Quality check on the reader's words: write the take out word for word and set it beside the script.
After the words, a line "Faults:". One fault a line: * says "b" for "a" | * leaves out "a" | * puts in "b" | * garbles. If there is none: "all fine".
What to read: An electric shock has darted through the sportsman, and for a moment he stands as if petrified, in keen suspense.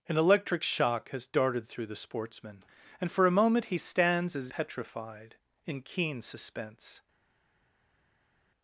An electric shock has darted through the sportsman, and for a moment he stands as petrified, in keen suspense.
Faults:
* leaves out "if"